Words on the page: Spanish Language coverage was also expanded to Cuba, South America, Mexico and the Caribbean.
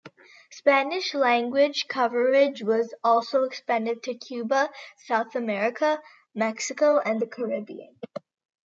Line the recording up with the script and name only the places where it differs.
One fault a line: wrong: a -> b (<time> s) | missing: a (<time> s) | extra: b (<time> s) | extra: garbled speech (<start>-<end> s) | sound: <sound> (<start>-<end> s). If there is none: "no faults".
no faults